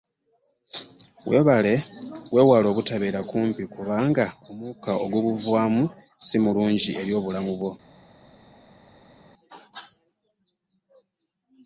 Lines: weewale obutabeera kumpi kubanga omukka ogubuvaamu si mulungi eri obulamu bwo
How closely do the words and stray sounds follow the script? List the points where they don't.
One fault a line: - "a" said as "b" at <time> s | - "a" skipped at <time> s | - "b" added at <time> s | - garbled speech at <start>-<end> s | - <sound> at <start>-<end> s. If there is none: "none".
none